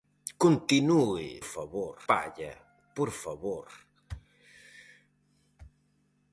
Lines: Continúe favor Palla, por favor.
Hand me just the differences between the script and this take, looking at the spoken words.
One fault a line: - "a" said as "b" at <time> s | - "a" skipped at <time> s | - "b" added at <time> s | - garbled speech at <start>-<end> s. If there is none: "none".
none